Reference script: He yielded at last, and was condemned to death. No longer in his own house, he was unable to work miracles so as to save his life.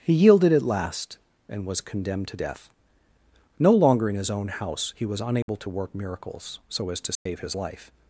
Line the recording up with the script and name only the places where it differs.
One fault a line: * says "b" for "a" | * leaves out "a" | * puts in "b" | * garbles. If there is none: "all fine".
all fine